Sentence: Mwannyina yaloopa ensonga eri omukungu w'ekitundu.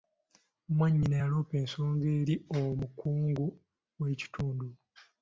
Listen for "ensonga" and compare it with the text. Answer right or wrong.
right